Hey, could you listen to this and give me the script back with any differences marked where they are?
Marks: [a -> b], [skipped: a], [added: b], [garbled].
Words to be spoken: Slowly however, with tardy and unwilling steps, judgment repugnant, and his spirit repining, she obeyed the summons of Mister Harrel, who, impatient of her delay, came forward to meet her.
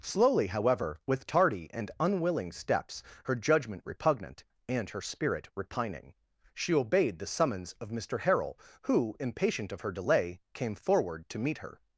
Slowly however, with tardy and unwilling steps, [added: her] judgment repugnant, and [his -> her] spirit repining, she obeyed the summons of Mister Harrel, who, impatient of her delay, came forward to meet her.